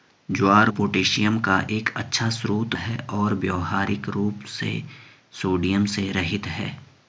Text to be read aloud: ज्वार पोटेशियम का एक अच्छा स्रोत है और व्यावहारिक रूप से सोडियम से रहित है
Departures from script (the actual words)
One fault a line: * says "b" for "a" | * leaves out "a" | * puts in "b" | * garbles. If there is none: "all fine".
all fine